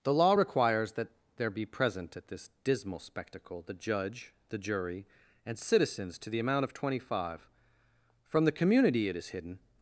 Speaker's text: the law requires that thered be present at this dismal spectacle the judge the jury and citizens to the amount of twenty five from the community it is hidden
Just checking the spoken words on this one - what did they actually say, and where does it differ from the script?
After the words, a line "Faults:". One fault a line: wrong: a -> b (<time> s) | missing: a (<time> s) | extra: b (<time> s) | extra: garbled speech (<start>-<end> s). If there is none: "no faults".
the law requires that there be present at this dismal spectacle the judge the jury and citizens to the amount of twenty five from the community it is hidden
Faults:
wrong: thered -> there (1.4 s)